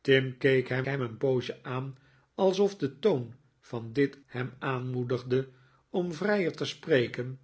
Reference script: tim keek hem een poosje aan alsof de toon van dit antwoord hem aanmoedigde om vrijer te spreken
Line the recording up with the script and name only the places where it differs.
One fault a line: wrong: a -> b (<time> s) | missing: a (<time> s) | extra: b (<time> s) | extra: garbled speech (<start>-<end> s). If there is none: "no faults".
extra: hem (0.8 s)
missing: antwoord (4.2 s)